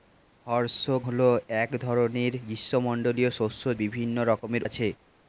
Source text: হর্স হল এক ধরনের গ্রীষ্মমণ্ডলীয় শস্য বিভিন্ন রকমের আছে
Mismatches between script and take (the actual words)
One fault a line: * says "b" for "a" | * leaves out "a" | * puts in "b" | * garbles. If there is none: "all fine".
all fine